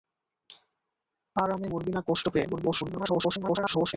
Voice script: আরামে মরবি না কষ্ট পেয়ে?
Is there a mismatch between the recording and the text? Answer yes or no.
yes